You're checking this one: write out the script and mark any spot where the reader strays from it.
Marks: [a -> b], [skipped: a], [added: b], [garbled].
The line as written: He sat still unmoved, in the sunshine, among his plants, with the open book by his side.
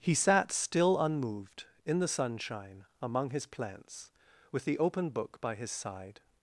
He sat still unmoved, in the sunshine, among his plants, with the open book by his side.